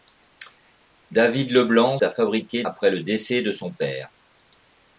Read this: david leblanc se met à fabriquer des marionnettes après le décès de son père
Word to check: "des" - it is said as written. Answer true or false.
false